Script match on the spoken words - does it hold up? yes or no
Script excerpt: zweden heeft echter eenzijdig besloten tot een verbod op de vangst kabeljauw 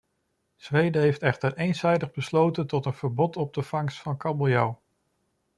no